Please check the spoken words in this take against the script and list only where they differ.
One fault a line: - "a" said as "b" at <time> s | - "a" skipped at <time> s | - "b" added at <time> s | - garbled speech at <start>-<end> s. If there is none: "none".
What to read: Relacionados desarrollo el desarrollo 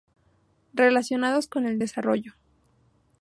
- "desarrollo" said as "con" at 1.4 s